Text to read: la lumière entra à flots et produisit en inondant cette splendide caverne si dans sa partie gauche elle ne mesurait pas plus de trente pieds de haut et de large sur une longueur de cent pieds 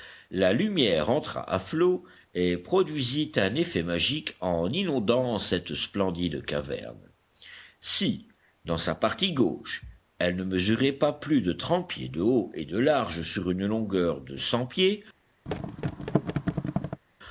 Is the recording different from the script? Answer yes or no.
yes